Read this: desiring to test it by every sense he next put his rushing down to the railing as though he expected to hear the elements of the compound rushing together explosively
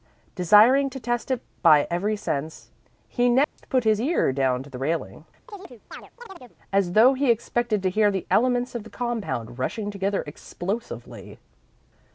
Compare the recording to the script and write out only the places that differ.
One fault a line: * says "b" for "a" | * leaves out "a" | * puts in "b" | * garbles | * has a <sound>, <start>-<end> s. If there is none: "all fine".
* has a dropout, 3.4-3.6 s
* says "ear" for "rushing"
* has a chirp, 5.5-6.6 s